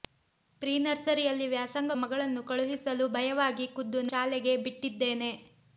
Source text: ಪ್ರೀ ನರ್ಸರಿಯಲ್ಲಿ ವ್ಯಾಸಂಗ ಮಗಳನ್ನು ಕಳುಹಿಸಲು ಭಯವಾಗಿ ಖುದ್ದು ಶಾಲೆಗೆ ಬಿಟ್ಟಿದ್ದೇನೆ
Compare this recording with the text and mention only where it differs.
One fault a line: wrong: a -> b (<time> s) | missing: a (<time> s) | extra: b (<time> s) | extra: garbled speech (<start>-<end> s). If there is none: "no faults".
no faults